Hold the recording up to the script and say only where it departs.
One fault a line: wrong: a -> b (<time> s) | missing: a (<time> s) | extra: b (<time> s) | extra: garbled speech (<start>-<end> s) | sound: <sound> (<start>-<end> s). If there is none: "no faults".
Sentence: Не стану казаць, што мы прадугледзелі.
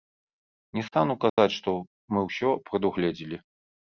sound: dropout (1.3-1.4 s)
extra: ўсё (2.3 s)